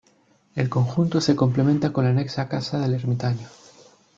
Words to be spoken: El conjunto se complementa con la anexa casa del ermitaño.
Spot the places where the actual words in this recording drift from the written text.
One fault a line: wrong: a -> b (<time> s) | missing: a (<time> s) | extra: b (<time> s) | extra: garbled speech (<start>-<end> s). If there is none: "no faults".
no faults